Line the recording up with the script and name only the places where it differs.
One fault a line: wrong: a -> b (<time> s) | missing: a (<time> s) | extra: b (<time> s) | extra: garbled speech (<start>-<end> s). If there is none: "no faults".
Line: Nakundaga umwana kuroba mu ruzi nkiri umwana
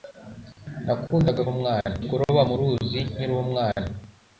no faults